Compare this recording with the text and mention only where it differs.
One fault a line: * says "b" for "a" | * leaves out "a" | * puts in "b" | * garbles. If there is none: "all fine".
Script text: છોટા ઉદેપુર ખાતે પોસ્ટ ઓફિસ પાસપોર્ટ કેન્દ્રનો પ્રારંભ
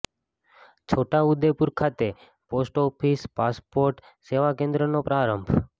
* puts in "સેવા"